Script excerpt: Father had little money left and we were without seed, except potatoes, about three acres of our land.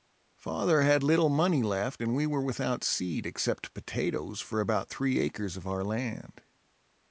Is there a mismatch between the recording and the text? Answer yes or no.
yes